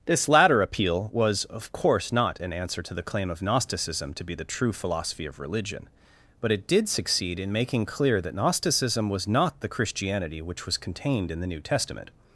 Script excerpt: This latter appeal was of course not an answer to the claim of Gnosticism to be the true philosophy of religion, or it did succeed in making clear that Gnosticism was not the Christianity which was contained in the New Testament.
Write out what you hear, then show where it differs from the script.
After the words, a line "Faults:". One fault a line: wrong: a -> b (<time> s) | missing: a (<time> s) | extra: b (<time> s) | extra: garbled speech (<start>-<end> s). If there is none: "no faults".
This latter appeal was of course not an answer to the claim of Gnosticism to be the true philosophy of religion, but it did succeed in making clear that Gnosticism was not the Christianity which was contained in the New Testament.
Faults:
wrong: or -> but (6.4 s)